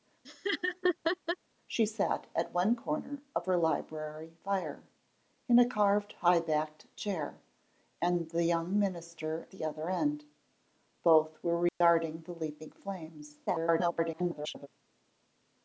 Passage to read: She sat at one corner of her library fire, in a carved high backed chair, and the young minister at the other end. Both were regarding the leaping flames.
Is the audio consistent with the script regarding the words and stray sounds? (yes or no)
no